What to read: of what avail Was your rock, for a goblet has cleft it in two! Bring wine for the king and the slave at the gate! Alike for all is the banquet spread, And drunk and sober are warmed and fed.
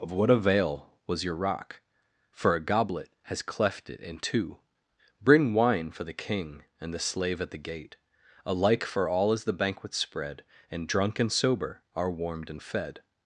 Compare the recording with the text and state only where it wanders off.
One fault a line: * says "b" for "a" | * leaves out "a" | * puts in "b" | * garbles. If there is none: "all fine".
all fine